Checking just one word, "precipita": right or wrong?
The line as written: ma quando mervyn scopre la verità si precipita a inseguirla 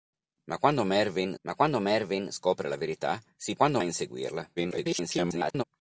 wrong